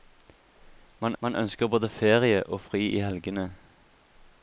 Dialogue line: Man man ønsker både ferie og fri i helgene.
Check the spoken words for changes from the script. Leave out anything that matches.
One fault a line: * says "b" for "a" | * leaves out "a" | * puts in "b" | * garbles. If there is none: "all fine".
all fine